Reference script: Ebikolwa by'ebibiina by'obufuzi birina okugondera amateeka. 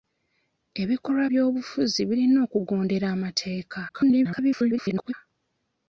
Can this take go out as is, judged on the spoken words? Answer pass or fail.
fail